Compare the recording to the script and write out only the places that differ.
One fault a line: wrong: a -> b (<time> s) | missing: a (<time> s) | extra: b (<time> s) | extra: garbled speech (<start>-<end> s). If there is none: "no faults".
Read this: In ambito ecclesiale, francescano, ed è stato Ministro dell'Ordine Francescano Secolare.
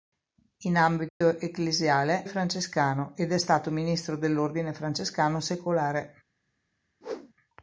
no faults